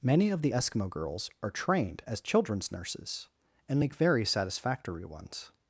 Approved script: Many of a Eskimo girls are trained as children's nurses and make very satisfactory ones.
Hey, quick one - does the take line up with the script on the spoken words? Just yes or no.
no